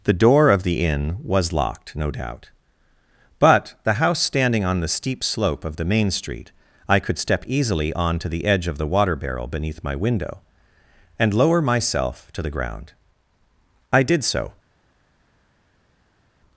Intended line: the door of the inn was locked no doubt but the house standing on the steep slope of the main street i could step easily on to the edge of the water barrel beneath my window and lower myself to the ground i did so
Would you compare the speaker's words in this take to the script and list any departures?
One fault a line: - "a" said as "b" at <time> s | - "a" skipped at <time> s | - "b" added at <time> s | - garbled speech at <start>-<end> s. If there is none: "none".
none